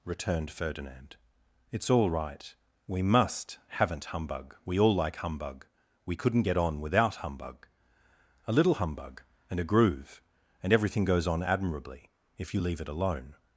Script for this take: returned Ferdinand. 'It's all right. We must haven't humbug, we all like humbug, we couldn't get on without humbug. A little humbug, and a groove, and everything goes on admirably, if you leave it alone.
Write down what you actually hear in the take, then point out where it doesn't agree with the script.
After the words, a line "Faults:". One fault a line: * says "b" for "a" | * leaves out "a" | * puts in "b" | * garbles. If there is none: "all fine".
returned Ferdinand. 'It's all right. We must haven't humbug, we all like humbug, we couldn't get on without humbug. A little humbug, and a groove, and everything goes on admirably, if you leave it alone.
Faults:
all fine